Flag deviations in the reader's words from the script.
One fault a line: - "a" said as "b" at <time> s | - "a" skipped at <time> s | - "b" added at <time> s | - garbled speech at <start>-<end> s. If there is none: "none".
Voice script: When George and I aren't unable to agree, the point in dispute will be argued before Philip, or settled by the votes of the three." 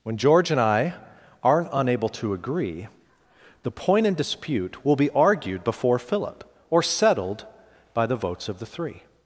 none